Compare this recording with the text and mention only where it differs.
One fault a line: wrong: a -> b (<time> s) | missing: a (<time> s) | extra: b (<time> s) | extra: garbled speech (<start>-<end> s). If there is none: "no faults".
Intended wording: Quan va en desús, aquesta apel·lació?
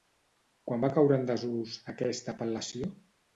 extra: caure (1.0 s)